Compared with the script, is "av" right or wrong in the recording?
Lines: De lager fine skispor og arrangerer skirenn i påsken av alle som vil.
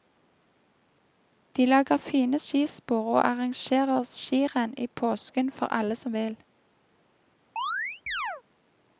wrong